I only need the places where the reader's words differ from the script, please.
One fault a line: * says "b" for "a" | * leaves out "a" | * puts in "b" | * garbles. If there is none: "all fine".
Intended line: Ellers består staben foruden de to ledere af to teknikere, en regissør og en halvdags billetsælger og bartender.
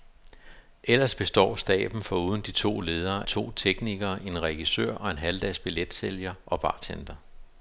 * leaves out "af"